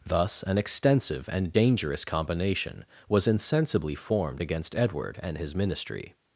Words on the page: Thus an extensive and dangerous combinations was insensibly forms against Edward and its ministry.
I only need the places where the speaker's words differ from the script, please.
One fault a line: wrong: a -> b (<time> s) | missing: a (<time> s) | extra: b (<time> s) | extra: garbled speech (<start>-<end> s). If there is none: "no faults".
wrong: combinations -> combination (2.0 s)
wrong: forms -> formed (3.9 s)
wrong: its -> his (5.4 s)